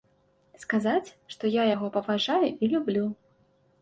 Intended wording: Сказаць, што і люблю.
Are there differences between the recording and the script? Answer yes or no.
yes